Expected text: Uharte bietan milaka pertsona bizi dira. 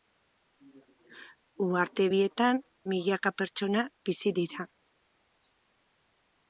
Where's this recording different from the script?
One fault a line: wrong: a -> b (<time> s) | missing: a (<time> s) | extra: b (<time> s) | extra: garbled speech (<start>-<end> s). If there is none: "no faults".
no faults